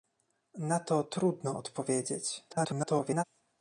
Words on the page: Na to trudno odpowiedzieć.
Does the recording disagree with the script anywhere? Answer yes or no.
yes